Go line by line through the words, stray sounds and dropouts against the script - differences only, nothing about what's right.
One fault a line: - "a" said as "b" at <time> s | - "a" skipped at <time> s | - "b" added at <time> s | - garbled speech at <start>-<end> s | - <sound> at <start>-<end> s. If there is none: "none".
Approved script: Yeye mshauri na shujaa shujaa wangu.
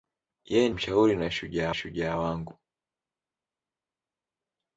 none